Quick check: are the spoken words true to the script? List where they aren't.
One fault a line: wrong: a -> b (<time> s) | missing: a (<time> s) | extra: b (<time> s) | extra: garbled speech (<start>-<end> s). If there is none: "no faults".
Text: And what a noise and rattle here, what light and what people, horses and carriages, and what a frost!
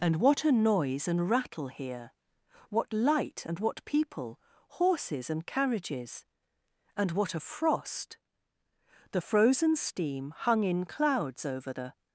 extra: The frozen steam hung in clouds over the (9.1 s)